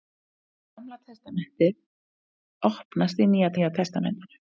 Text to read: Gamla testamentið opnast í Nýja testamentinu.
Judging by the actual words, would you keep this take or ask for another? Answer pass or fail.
fail